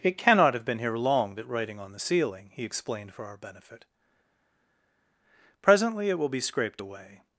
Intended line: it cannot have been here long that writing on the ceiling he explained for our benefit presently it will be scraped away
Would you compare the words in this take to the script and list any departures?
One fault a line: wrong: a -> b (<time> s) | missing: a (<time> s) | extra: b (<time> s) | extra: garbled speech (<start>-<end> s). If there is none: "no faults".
no faults